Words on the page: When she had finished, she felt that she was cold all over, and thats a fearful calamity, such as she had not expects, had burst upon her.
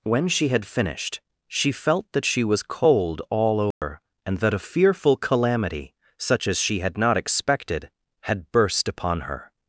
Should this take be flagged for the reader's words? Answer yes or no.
yes